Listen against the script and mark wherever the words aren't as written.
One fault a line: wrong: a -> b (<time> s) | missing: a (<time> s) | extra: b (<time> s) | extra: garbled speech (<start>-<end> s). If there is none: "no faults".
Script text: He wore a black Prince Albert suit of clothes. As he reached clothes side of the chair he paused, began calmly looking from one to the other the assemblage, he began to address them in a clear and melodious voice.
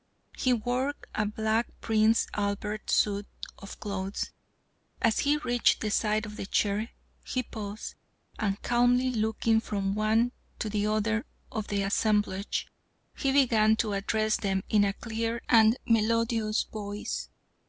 wrong: clothes -> the (5.8 s)
wrong: began -> and (8.4 s)
extra: of (11.5 s)